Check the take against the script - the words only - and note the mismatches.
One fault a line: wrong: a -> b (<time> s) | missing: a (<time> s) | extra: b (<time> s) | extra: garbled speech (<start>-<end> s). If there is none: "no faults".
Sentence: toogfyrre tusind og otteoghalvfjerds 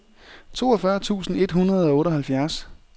extra: et hundrede (1.4 s)